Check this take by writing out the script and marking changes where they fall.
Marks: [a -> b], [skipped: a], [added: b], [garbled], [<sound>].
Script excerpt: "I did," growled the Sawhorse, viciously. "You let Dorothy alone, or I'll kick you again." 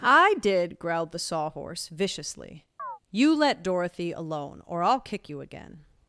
"I did," growled the Sawhorse, viciously. [chirp] "You let Dorothy alone, or I'll kick you again."